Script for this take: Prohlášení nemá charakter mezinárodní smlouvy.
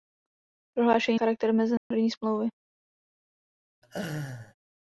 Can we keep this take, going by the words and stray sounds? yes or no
no